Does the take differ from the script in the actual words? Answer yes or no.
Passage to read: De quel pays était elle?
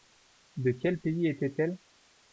no